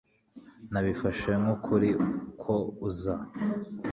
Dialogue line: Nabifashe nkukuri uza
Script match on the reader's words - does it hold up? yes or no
no